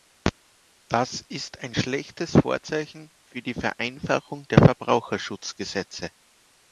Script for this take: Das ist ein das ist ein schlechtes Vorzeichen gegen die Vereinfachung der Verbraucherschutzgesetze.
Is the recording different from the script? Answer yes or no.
yes